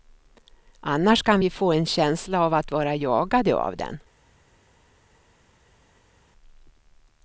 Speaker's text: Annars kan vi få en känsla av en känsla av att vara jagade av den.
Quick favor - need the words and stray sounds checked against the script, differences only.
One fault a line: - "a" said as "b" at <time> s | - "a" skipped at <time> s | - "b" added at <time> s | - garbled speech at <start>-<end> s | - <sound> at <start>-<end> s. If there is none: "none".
- "en känsla av" skipped at 2.5 s